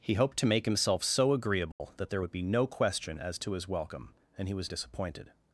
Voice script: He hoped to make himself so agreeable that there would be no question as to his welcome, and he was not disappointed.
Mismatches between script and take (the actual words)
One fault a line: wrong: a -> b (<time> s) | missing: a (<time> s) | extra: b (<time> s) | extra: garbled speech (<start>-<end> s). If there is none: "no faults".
missing: not (4.7 s)